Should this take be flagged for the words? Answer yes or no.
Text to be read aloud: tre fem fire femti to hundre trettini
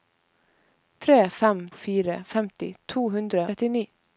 no